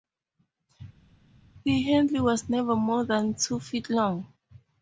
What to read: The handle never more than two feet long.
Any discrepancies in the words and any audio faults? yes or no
yes